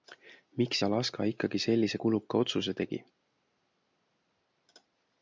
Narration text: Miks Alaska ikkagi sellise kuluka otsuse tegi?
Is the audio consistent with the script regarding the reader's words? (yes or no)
yes